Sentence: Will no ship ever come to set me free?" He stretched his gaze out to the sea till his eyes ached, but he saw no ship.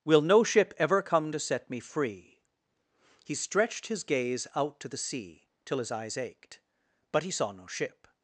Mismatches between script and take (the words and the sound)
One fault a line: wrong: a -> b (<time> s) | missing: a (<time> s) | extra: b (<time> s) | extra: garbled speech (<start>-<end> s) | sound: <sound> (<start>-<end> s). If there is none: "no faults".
no faults